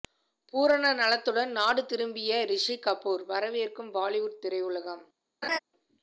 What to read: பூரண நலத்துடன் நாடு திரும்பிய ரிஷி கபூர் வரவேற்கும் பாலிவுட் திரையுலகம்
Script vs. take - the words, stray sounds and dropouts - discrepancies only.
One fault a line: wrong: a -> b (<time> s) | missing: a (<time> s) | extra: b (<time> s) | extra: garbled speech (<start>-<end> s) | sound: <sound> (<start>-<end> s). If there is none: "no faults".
sound: laugh (5.4-5.6 s)